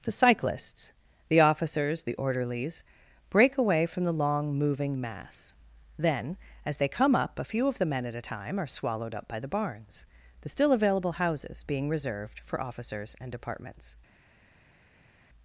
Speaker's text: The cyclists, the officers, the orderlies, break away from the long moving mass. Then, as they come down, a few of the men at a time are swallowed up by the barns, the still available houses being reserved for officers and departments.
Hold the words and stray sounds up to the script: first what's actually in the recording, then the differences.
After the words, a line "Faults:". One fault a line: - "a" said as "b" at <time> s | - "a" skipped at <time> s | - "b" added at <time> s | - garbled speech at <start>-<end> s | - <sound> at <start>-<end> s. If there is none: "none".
The cyclists, the officers, the orderlies, break away from the long moving mass. Then, as they come up, a few of the men at a time are swallowed up by the barns, the still available houses being reserved for officers and departments.
Faults:
- "down" said as "up" at 7.2 s